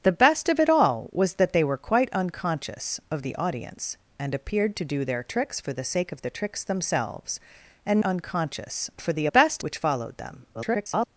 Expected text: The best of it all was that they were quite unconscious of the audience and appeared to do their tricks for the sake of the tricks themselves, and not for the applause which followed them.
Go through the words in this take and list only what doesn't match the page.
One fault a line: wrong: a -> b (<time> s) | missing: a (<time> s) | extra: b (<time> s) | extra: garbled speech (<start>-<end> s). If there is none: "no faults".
wrong: not -> unconscious (8.0 s)
wrong: applause -> best (9.3 s)
extra: garbled speech (10.5-11.1 s)